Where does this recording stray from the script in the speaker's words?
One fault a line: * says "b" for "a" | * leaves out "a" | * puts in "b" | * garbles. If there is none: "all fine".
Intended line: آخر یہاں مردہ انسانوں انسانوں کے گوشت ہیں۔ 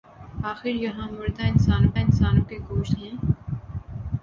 all fine